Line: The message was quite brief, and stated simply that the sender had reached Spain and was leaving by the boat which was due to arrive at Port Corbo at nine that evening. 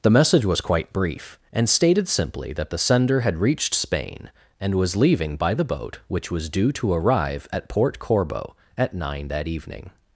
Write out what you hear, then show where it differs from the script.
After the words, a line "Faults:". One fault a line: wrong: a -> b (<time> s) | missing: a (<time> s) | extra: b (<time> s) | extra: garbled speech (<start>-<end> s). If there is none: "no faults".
The message was quite brief, and stated simply that the sender had reached Spain and was leaving by the boat which was due to arrive at Port Corbo at nine that evening.
Faults:
no faults